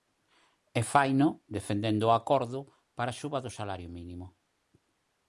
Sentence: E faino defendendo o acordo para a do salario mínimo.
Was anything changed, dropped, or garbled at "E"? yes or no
no